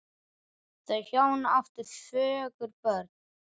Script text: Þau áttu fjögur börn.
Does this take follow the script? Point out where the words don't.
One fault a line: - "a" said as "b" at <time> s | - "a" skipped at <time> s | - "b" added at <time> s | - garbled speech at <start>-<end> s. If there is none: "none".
- "hjón" added at 1.1 s